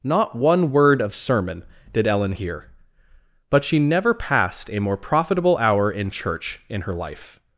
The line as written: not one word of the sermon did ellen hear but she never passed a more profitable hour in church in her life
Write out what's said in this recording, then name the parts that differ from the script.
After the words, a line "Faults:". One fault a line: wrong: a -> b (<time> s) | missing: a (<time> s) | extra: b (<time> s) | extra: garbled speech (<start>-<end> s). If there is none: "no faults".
not one word of sermon did ellen hear but she never passed a more profitable hour in church in her life
Faults:
missing: the (1.1 s)